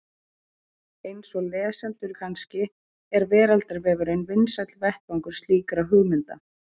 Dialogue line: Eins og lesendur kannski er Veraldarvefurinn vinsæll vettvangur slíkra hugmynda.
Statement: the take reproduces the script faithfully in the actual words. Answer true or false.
true